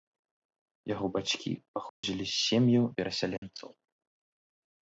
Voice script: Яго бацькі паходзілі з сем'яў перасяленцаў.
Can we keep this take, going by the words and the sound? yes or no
no